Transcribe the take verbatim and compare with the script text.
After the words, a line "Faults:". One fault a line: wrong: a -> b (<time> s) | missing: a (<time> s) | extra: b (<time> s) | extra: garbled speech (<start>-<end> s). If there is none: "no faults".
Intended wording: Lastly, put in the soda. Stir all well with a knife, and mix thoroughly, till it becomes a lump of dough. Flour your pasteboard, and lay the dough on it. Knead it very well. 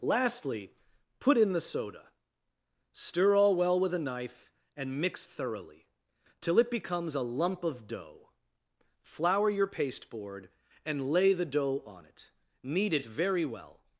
Lastly, put in the soda. Stir all well with a knife, and mix thoroughly, till it becomes a lump of dough. Flour your pasteboard, and lay the dough on it. Knead it very well.
Faults:
no faults